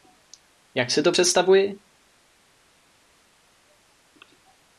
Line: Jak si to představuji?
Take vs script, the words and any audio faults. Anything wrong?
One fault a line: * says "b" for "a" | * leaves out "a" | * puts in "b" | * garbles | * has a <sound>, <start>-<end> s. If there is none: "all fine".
all fine